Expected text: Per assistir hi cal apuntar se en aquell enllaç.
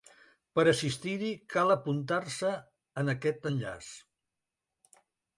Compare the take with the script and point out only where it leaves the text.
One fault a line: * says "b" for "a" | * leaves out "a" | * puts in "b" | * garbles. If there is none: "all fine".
* says "aquest" for "aquell"